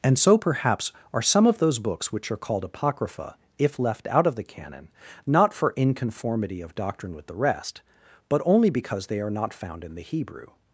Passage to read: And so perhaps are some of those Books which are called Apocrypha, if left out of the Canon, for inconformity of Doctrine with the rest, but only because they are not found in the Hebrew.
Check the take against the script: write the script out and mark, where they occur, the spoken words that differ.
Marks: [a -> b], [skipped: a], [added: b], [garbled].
And so perhaps are some of those Books which are called Apocrypha, if left out of the Canon, [added: not] for inconformity of Doctrine with the rest, but only because they are not found in the Hebrew.